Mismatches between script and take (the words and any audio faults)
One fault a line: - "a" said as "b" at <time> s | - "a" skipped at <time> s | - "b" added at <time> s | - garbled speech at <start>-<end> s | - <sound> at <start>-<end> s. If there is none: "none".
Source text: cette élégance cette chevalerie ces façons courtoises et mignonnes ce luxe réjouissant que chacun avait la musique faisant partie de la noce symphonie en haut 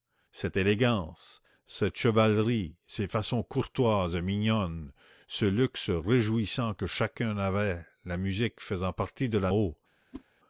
- "noce symphonie en" skipped at 9.5 s
- whoosh at 10.1-10.2 s